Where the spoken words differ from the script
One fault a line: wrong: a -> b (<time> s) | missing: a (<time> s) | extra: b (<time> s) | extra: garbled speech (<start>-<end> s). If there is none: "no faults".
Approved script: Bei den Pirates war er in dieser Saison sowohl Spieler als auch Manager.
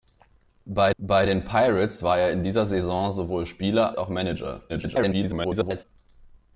extra: bei (1.0 s)
missing: als (4.0 s)
extra: garbled speech (4.7-5.8 s)